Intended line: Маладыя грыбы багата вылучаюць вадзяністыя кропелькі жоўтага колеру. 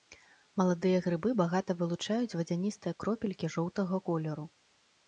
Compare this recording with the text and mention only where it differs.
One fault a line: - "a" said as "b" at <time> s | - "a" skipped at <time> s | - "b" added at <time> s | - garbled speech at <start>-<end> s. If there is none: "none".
none